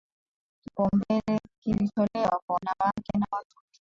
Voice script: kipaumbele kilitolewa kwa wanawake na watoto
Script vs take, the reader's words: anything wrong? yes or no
no